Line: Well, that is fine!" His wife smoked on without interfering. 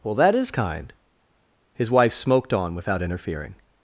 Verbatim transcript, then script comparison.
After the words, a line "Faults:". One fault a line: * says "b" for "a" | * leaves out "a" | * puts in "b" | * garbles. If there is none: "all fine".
Well, that is kind!" His wife smoked on without interfering.
Faults:
* says "kind" for "fine"